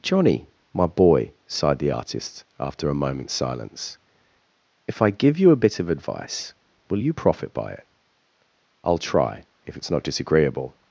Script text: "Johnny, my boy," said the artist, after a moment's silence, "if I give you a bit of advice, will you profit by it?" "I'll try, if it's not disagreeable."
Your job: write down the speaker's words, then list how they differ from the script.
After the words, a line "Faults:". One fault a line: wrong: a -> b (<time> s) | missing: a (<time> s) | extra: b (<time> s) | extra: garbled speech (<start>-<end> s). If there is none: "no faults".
"Johnny, my boy," sighed the artist, after a moment's silence, "if I give you a bit of advice, will you profit by it?" "I'll try, if it's not disagreeable."
Faults:
wrong: said -> sighed (1.5 s)